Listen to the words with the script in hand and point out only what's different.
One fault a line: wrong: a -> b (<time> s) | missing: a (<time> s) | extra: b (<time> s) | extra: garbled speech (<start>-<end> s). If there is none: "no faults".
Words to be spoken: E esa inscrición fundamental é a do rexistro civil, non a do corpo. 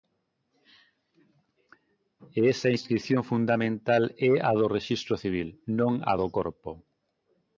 no faults